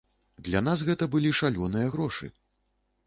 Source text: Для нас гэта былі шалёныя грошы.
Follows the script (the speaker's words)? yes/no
yes